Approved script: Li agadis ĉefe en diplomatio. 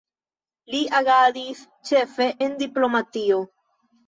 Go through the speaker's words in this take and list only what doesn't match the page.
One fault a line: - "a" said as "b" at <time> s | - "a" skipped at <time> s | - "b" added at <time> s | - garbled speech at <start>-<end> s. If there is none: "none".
none